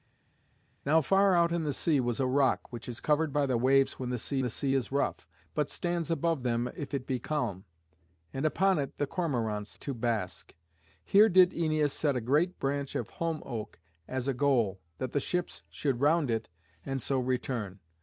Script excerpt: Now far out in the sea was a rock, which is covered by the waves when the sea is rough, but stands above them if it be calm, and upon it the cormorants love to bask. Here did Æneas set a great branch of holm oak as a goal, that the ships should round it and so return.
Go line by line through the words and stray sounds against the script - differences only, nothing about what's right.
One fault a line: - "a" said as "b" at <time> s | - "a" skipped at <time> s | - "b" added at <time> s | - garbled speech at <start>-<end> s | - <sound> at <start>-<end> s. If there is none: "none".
- "the sea" added at 4.4 s
- "love" skipped at 9.8 s